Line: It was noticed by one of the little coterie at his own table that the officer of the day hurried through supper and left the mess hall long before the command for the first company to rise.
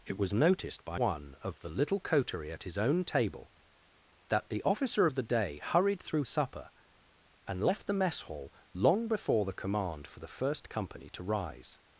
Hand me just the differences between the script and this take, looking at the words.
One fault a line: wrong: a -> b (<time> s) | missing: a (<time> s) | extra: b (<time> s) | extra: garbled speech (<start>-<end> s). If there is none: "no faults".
no faults